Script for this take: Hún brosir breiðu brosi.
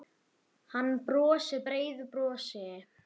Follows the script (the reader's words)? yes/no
no